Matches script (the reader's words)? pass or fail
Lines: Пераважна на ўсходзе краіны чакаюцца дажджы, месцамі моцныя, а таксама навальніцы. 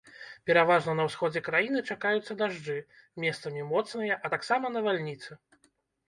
pass